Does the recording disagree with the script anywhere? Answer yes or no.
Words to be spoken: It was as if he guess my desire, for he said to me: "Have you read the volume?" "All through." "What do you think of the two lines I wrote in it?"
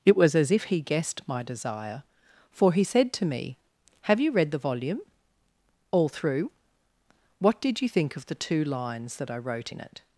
yes